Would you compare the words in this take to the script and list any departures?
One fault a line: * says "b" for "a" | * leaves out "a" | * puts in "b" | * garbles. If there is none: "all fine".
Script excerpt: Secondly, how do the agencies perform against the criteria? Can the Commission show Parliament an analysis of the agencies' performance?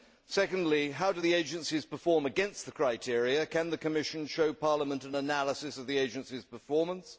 all fine